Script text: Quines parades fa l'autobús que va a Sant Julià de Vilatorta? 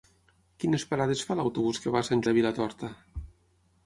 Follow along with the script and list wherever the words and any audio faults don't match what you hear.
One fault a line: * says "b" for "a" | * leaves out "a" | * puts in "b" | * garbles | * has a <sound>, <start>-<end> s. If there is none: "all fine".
* leaves out "Julià"